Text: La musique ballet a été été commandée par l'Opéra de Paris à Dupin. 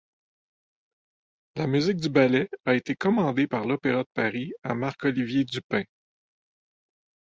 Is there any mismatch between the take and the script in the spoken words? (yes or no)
yes